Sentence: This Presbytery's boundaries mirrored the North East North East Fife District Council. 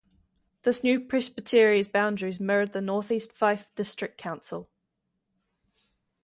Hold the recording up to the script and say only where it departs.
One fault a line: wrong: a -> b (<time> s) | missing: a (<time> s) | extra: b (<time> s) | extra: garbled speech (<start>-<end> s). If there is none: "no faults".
extra: new (0.8 s)
missing: North East (3.3 s)